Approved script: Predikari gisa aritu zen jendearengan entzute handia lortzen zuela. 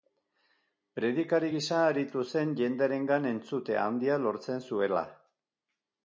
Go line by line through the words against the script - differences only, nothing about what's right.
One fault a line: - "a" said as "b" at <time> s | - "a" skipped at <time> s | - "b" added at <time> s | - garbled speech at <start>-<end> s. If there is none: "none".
none